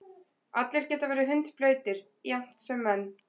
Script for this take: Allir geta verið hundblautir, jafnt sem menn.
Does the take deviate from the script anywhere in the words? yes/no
no